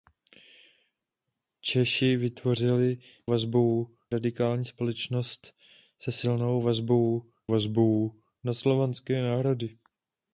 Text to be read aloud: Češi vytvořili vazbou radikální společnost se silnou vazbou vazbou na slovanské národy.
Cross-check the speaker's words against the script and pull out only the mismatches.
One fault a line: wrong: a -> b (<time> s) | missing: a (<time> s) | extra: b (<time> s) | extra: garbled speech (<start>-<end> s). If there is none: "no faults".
no faults